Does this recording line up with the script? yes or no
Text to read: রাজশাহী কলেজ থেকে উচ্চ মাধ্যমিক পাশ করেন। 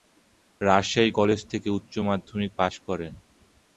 yes